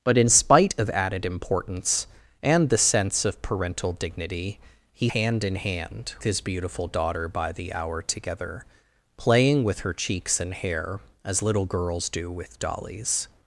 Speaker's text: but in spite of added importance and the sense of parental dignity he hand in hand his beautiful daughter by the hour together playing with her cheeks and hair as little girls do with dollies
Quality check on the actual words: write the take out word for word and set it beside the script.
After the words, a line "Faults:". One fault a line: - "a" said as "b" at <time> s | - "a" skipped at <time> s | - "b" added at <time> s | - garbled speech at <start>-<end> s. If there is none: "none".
but in spite of added importance and the sense of parental dignity he hand in hand his beautiful daughter by the hour together playing with her cheeks and hair as little girls do with dollies
Faults:
none